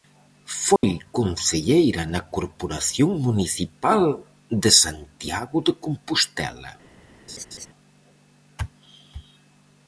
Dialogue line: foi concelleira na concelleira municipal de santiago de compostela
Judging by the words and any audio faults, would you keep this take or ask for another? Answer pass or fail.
fail